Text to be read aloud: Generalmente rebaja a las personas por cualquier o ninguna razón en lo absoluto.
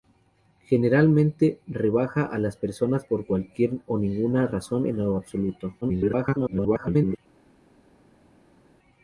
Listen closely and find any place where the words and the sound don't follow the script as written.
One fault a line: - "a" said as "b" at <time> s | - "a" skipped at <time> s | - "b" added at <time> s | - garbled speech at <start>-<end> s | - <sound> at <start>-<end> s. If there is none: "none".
- garbled speech at 5.8-7.2 s